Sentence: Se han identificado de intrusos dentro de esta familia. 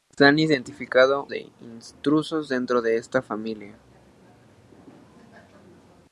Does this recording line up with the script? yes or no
yes